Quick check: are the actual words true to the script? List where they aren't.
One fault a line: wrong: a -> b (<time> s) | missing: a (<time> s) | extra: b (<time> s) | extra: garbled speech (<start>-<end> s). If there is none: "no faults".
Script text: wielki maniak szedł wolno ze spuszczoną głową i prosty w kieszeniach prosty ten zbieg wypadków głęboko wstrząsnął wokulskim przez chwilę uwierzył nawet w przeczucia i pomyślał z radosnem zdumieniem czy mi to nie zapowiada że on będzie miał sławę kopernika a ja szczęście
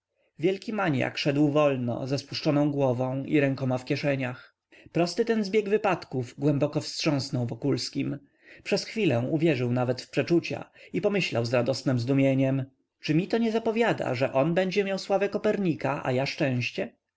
wrong: prosty -> rękoma (3.4 s)